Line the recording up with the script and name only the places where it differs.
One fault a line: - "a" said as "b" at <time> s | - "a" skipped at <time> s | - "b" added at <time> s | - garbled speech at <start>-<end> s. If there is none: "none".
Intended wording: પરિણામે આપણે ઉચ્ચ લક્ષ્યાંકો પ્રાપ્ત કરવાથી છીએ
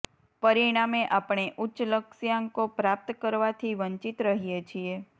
- "વંચિત રહીએ" added at 3.8 s